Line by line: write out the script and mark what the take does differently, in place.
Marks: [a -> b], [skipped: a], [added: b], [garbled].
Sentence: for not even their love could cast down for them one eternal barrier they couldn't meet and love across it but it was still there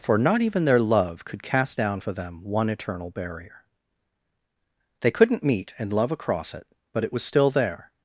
for not even their love could cast down for them one eternal barrier they couldn't meet and love across it but it was still there